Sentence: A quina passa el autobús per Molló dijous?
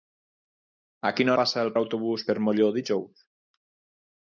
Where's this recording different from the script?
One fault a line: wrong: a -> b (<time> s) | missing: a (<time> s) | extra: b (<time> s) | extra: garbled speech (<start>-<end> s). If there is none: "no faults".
no faults